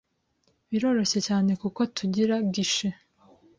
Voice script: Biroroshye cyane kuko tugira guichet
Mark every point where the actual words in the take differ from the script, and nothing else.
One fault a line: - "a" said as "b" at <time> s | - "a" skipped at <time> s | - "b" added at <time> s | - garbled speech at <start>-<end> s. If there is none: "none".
none